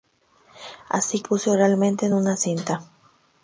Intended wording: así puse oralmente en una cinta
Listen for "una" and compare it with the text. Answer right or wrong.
right